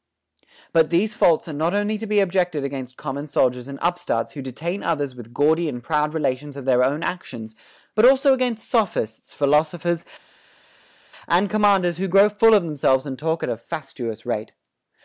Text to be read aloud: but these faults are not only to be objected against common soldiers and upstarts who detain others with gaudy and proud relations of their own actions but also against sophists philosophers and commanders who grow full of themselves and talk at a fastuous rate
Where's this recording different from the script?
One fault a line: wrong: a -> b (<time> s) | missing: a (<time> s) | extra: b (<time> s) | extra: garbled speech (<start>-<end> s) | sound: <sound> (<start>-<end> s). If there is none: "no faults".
no faults